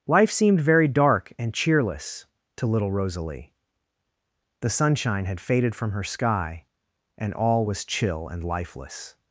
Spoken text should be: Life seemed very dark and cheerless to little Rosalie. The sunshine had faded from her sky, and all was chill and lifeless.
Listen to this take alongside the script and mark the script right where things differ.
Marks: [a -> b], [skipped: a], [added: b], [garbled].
Life seemed very dark and cheerless to little Rosalie. The sunshine had faded from her sky, and all was chill and lifeless.